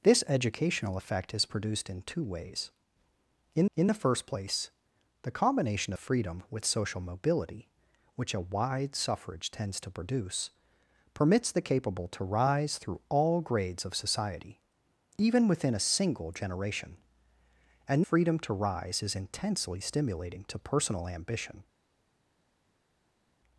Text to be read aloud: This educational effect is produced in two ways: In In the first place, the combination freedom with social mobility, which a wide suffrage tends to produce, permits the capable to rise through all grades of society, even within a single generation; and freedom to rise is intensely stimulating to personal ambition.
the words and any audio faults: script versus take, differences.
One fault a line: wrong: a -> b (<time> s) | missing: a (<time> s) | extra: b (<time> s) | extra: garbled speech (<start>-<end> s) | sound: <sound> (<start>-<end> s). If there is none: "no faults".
no faults